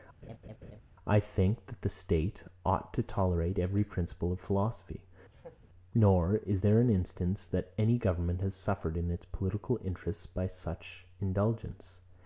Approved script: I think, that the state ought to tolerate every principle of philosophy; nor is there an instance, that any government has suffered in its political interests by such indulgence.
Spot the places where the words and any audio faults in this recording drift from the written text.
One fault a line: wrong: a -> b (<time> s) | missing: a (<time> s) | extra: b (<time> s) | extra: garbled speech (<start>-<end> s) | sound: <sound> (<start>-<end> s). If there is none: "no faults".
sound: laugh (0.2-0.8 s)
sound: laugh (5.3-5.7 s)